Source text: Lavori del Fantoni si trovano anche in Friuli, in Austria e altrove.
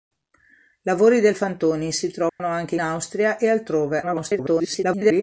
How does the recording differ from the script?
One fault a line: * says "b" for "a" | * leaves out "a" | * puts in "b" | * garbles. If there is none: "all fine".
* leaves out "in Friuli in"
* garbles